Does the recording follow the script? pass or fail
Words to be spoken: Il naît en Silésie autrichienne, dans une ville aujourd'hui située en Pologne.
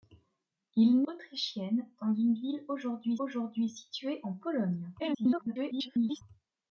fail